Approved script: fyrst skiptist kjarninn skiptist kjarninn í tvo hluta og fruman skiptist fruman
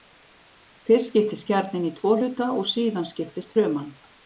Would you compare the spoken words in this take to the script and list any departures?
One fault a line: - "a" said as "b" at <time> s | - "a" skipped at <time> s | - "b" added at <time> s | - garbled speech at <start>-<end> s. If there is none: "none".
- "skiptist kjarninn" skipped at 1.9 s
- "fruman" said as "síðan" at 2.8 s